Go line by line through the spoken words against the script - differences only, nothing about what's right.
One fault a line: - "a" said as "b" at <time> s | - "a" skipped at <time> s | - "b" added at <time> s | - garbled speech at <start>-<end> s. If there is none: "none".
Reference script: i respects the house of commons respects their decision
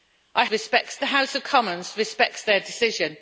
none